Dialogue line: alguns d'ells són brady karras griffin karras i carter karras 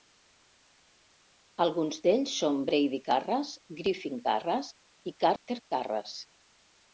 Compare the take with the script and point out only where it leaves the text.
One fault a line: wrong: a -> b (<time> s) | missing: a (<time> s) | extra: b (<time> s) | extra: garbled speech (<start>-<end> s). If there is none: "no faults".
no faults